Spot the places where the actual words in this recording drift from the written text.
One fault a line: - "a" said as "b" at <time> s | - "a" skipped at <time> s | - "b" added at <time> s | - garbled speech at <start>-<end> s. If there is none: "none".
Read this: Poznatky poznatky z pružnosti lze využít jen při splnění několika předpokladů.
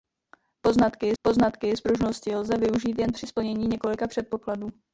none